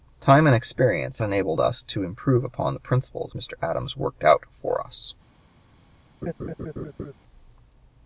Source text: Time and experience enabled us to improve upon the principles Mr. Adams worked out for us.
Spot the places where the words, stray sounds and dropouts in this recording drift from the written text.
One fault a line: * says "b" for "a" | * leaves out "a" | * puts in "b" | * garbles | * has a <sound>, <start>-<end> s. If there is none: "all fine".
* has a laugh, 6.2-7.1 s